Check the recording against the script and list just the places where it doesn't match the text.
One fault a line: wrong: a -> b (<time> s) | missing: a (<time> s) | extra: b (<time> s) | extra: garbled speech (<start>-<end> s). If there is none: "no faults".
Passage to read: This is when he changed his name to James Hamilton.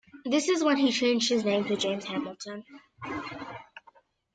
no faults